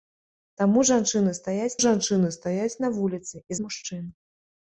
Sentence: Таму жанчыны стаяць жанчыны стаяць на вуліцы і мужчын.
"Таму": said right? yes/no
yes